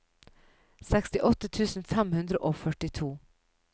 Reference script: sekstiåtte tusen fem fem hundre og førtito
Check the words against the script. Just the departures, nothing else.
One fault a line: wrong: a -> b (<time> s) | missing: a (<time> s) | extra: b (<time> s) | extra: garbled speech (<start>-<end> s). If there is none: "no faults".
missing: fem (2.2 s)